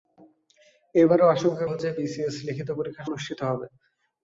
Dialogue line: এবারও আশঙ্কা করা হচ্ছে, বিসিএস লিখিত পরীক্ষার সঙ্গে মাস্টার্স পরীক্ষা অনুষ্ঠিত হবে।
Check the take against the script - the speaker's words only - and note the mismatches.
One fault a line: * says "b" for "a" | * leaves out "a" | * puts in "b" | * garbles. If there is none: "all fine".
* leaves out "করা"
* leaves out "সঙ্গে মাস্টার্স পরীক্ষা"